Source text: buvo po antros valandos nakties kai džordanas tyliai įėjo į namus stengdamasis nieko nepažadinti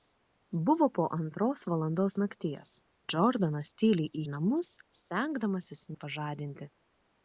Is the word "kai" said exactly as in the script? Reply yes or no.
no